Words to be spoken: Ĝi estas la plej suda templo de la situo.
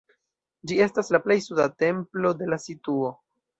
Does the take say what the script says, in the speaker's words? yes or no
yes